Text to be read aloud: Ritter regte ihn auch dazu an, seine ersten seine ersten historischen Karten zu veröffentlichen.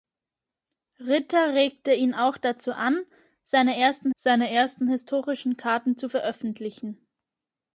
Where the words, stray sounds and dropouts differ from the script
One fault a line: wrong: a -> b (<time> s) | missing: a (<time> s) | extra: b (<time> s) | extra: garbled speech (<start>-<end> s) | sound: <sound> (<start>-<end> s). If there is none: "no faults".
no faults